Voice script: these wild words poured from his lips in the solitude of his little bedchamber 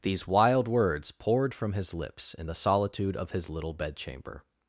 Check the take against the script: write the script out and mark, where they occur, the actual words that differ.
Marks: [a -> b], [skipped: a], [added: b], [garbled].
these wild words poured from his lips in the solitude of his little bedchamber